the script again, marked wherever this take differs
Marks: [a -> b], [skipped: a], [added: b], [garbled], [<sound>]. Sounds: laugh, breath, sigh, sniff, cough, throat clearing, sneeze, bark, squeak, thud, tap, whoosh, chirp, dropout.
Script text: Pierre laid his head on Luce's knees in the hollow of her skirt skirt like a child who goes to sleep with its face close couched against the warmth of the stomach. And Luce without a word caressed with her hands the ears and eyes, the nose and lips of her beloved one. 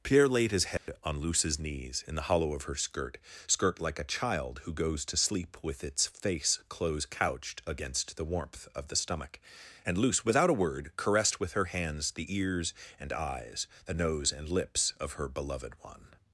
Pierre laid his head [dropout] on Luce's knees in the hollow of her skirt skirt like a child who goes to sleep with its face close couched against the warmth of the stomach. And Luce without a word caressed with her hands the ears and eyes, the nose and lips of her beloved one.